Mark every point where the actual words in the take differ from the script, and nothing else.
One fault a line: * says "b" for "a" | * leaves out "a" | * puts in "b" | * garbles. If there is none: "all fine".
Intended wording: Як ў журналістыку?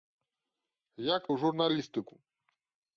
all fine